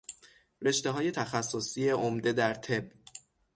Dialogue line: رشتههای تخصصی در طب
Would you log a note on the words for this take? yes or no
yes